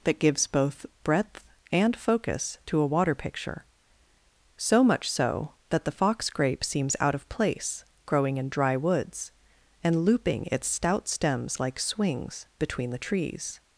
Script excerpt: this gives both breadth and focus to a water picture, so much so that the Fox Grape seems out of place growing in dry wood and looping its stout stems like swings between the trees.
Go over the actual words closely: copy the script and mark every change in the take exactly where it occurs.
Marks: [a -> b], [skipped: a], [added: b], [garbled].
[this -> that] gives both breadth and focus to a water picture, so much so that the Fox Grape seems out of place growing in dry [wood -> woods] and looping its stout stems like swings between the trees.